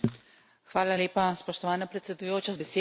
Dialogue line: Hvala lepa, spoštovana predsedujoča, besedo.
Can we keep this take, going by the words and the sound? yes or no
yes